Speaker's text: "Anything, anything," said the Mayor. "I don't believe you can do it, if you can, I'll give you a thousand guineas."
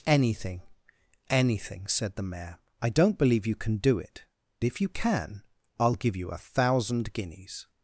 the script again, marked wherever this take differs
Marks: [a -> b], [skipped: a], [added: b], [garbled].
"Anything, anything," said the Mayor. "I don't believe you can do it, if you can, I'll give you a thousand guineas."